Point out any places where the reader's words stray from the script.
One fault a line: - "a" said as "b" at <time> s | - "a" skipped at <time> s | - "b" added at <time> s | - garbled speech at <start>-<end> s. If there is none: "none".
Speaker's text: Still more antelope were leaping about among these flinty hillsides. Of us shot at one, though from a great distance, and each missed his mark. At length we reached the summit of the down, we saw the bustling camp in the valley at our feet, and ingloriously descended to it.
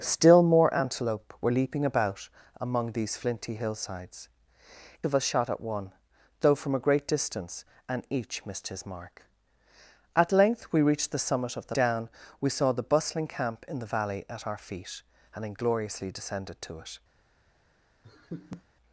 none